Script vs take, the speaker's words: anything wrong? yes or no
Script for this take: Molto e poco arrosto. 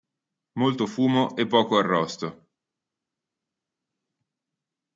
yes